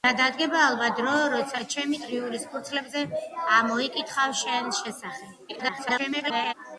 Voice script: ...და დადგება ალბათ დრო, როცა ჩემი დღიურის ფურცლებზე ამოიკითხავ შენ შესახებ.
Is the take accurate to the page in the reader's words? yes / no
no